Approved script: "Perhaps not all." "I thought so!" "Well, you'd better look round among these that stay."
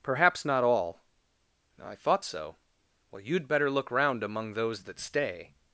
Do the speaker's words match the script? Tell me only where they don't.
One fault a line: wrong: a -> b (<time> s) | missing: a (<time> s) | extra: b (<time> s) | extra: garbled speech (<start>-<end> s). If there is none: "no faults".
wrong: these -> those (4.5 s)